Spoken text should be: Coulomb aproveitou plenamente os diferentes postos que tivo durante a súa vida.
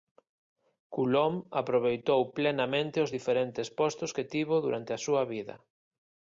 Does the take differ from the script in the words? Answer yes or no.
no